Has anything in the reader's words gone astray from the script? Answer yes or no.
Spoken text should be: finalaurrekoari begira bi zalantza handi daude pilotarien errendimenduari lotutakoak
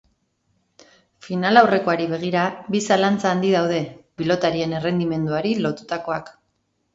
no